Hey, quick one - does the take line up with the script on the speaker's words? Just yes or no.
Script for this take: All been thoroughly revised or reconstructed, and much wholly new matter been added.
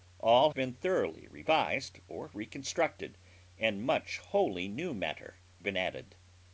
yes